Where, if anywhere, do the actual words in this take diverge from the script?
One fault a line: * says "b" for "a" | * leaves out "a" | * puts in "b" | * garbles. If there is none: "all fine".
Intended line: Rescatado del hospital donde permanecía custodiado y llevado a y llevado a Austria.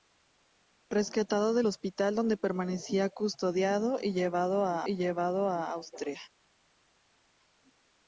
all fine